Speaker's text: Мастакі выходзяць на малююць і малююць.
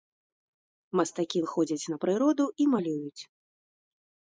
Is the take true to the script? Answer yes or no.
no